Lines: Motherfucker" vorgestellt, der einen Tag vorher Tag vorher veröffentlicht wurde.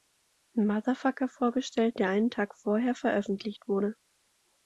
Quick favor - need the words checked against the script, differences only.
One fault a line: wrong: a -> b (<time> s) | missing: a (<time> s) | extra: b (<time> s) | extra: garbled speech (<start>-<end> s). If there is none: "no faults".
missing: Tag vorher (3.0 s)